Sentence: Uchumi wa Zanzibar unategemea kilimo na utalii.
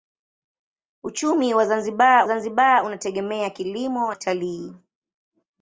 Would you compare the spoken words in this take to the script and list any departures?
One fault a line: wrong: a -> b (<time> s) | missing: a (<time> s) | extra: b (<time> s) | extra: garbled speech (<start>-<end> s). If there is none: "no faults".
extra: Zanzibar (2.2 s)
missing: na (4.1 s)